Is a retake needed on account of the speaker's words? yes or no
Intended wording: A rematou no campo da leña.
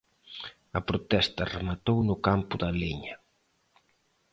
yes